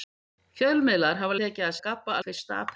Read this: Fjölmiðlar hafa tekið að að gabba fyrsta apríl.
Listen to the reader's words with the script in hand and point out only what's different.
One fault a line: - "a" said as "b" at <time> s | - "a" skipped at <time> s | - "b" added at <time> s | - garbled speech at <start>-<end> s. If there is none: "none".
none